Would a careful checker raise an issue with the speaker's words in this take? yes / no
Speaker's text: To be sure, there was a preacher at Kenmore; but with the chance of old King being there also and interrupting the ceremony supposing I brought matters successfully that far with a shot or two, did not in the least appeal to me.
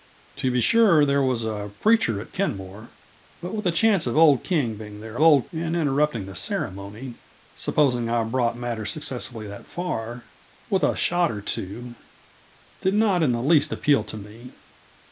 yes